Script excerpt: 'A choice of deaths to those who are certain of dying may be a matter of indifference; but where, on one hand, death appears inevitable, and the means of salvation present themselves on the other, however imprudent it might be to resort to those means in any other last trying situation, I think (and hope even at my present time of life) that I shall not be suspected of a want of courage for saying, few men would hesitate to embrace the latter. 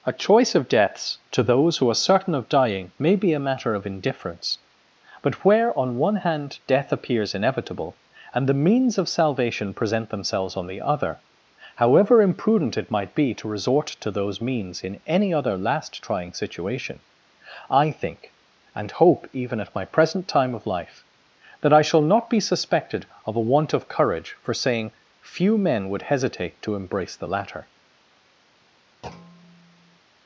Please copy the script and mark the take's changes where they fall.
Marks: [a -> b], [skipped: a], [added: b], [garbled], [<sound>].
'A choice of deaths to those who are certain of dying may be a matter of indifference; but where, on one hand, death appears inevitable, and the means of salvation present themselves on the other, however imprudent it might be to resort to those means in any other last trying situation, I think (and hope even at my present time of life) that I shall not be suspected of a want of courage for saying, few men would hesitate to embrace the latter. [thud]